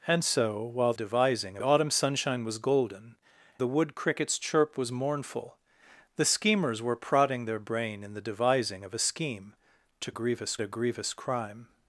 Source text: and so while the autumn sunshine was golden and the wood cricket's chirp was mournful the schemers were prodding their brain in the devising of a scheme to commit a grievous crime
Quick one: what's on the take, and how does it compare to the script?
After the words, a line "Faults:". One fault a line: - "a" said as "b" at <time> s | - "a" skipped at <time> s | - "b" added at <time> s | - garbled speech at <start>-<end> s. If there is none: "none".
and so while devising autumn sunshine was golden the wood cricket's chirp was mournful the schemers were prodding their brain in the devising of a scheme to grievous a grievous crime
Faults:
- "the" said as "devising" at 0.9 s
- "and" skipped at 3.1 s
- "commit" said as "grievous" at 10.1 s